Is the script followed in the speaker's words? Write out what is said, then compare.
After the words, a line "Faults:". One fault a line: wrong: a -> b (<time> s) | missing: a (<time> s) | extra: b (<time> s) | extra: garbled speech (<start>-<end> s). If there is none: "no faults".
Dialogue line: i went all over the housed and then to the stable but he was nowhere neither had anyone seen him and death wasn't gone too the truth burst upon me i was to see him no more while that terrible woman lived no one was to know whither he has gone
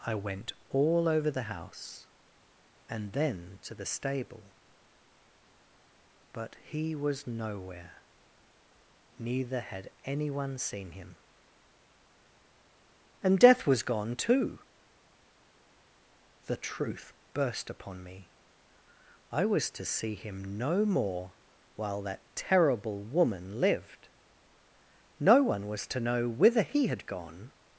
i went all over the house and then to the stable but he was nowhere neither had anyone seen him and death was gone too the truth burst upon me i was to see him no more while that terrible woman lived no one was to know whither he had gone
Faults:
wrong: housed -> house (1.4 s)
wrong: wasn't -> was (13.7 s)
wrong: has -> had (26.9 s)